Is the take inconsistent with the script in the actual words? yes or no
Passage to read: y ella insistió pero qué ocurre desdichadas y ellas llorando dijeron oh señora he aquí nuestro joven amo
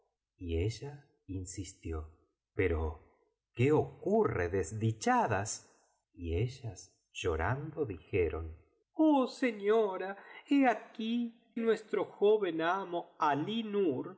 no